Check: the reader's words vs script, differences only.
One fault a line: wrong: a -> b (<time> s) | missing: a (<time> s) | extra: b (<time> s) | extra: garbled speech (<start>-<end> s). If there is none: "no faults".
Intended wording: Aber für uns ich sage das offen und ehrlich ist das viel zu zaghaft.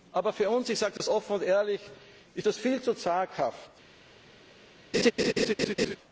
no faults